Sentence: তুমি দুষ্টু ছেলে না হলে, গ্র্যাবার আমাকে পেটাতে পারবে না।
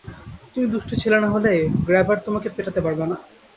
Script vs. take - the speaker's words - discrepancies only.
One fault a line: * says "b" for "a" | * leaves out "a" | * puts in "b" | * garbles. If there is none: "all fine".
* says "তোমাকে" for "আমাকে"